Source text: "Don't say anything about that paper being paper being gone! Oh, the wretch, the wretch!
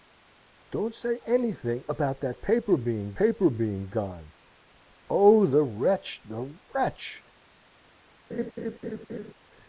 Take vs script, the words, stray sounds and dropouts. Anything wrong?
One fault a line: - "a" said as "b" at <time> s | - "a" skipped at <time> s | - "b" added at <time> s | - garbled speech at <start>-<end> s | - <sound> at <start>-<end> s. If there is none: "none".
- laugh at 8.3-9.3 s